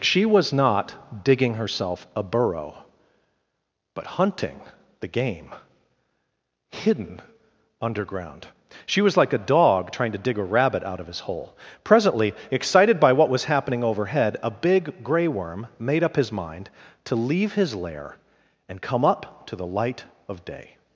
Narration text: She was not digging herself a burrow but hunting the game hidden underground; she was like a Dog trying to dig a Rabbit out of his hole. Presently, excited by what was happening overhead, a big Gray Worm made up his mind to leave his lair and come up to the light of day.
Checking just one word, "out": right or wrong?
right